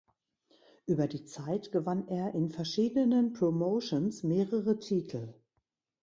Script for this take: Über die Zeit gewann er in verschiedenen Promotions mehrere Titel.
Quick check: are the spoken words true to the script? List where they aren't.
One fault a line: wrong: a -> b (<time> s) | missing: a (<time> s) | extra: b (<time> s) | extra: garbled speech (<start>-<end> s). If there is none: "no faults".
no faults